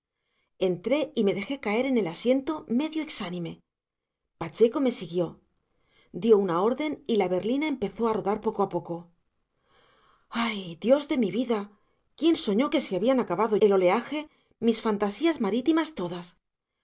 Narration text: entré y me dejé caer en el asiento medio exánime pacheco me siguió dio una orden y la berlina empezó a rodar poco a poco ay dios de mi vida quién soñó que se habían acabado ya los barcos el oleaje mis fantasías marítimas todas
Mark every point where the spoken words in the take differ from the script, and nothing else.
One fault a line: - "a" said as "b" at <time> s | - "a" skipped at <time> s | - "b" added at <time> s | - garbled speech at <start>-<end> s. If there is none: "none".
- "ya los barcos" skipped at 13.6 s